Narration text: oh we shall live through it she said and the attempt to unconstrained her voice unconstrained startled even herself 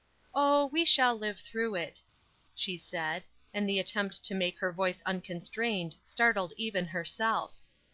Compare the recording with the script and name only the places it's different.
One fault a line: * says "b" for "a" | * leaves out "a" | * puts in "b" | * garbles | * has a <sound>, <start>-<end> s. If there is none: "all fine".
* says "make" for "unconstrained"